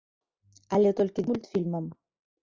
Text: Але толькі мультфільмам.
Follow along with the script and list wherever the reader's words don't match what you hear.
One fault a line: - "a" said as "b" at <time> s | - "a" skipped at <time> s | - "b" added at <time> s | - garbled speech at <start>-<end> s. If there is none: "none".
none